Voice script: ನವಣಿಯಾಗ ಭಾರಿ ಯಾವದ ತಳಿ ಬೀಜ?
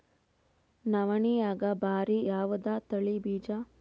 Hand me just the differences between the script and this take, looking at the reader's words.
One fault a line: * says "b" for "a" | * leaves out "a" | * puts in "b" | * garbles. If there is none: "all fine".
all fine